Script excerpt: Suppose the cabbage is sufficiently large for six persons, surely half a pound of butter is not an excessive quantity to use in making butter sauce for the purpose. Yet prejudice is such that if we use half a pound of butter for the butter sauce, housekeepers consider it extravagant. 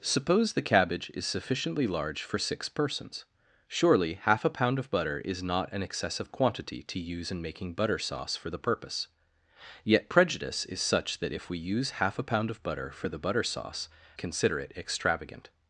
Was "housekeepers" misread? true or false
true